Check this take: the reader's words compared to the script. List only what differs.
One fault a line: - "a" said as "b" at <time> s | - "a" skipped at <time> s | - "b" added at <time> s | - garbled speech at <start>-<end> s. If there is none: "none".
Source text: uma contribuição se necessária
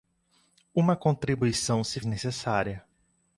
none